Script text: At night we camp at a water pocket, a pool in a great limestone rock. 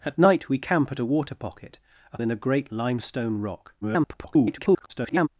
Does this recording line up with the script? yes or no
no